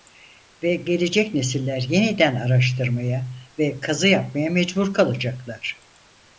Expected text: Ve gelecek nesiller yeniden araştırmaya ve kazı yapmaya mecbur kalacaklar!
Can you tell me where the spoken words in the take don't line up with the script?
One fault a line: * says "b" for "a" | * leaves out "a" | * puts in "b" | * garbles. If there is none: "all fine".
all fine